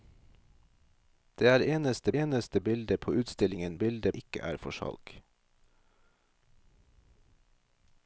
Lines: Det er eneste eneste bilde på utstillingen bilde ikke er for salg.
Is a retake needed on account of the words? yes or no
no